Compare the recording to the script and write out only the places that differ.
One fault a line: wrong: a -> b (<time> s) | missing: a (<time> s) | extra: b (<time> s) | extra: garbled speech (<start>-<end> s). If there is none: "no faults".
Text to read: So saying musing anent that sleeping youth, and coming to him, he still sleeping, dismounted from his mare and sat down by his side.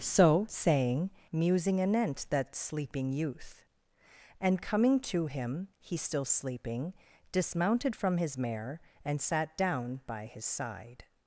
no faults